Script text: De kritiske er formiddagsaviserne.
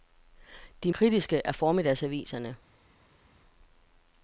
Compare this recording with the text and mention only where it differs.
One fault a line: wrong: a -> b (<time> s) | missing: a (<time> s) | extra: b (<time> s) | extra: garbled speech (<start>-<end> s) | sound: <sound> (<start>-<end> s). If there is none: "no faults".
no faults